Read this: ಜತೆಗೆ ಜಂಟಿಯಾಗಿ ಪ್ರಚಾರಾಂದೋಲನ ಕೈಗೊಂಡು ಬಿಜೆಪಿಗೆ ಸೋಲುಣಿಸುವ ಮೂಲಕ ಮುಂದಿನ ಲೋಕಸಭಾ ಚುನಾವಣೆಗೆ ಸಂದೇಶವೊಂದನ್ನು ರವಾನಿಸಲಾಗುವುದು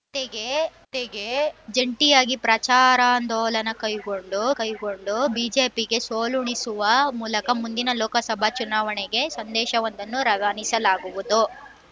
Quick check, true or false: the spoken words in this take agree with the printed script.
false